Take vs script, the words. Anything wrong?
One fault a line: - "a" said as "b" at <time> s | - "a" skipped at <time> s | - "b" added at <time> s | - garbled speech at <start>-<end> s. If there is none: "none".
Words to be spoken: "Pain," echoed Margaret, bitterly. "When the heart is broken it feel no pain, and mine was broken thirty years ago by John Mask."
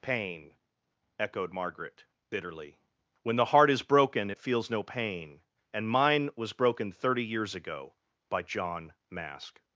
- "feel" said as "feels" at 4.4 s